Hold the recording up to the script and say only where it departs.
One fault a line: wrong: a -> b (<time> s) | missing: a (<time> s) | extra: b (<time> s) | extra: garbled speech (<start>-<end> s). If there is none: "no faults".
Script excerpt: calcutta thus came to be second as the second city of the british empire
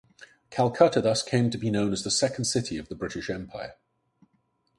wrong: second -> known (1.7 s)